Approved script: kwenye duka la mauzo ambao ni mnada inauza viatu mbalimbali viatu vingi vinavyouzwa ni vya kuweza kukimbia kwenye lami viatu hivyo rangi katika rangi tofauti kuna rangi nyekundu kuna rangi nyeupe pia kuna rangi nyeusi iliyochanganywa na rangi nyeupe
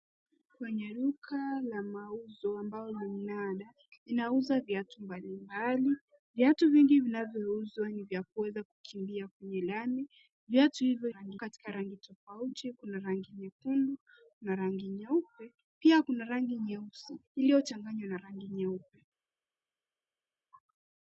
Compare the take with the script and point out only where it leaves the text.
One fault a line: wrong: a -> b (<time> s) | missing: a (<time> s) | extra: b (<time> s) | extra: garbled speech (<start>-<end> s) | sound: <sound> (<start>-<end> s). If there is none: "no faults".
no faults